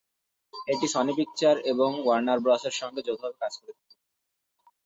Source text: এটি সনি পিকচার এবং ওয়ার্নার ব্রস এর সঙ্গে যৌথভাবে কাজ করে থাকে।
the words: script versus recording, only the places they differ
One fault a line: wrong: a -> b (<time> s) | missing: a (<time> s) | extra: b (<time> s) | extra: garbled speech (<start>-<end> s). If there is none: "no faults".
no faults